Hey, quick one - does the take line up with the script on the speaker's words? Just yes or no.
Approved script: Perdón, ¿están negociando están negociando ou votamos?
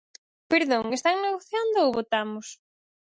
no